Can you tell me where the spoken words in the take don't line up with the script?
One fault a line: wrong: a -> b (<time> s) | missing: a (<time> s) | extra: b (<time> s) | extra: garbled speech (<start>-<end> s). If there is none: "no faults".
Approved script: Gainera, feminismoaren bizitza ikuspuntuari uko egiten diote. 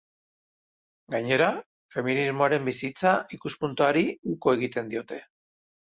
no faults